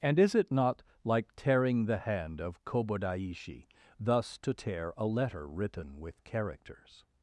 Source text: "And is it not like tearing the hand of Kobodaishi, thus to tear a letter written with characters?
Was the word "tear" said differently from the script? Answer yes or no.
no